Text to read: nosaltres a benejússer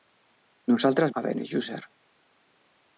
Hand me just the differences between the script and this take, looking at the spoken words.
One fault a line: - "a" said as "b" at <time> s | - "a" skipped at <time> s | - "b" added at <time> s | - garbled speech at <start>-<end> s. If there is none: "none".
none